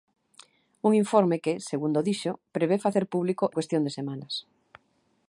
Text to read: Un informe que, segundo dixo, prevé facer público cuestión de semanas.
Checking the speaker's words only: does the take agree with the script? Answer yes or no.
yes